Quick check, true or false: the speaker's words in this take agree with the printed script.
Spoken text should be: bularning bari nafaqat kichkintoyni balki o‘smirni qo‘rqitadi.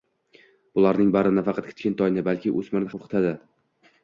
true